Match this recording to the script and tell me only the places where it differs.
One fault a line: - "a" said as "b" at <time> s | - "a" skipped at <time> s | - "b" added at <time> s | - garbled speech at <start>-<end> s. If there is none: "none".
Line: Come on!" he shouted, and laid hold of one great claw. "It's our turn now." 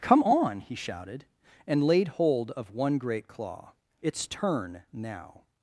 - "our" skipped at 4.3 s